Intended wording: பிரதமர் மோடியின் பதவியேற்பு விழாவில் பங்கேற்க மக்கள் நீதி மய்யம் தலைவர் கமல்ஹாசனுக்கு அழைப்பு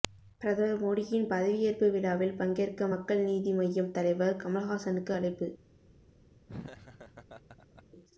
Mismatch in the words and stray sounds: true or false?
true